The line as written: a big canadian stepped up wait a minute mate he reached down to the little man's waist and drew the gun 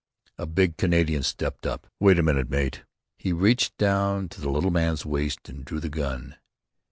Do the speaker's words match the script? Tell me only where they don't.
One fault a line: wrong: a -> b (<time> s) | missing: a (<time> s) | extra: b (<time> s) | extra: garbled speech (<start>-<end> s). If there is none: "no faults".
no faults